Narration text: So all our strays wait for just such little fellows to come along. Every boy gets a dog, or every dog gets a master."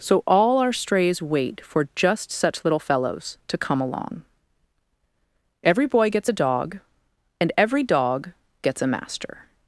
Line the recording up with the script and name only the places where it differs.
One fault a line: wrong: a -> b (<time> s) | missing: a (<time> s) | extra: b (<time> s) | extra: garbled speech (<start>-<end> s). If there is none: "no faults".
wrong: or -> and (7.4 s)